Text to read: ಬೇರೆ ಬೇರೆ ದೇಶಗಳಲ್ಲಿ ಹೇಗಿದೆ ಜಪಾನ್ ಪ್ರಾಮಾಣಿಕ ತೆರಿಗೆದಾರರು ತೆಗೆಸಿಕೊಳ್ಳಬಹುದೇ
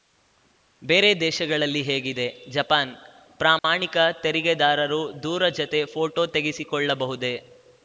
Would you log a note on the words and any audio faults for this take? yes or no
yes